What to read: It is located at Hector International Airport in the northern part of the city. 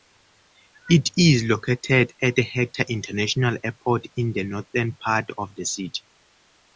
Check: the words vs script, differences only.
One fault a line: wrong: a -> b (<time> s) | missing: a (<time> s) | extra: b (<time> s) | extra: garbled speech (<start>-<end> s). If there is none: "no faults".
no faults